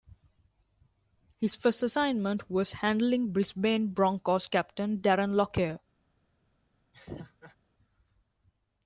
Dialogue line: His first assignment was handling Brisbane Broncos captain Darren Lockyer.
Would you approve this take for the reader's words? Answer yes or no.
yes